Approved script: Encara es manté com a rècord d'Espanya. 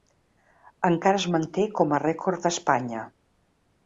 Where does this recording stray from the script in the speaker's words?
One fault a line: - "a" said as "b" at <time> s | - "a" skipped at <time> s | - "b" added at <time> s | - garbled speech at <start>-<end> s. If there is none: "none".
none